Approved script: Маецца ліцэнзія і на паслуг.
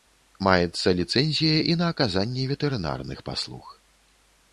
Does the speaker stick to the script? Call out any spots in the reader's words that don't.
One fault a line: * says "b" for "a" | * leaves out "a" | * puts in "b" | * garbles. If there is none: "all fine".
* puts in "аказанне ветэрынарных"